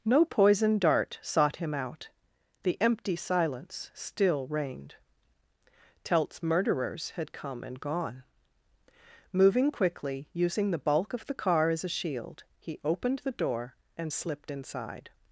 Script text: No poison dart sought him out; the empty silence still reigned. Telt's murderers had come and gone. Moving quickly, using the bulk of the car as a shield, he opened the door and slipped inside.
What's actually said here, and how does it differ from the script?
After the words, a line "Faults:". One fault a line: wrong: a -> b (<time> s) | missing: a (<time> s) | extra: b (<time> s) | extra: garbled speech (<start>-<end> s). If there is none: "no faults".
No poison dart sought him out; the empty silence still reigned. Telt's murderers had come and gone. Moving quickly, using the bulk of the car as a shield, he opened the door and slipped inside.
Faults:
no faults